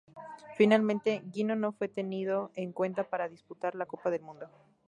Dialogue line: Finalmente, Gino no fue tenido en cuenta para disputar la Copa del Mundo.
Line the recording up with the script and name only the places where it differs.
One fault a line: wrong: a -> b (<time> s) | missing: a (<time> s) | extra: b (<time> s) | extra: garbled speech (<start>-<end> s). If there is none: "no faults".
no faults